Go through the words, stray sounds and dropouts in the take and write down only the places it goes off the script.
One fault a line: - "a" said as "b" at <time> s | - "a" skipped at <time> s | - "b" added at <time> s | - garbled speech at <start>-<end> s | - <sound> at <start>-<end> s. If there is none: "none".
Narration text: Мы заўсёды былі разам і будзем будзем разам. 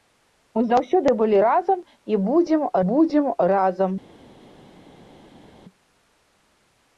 none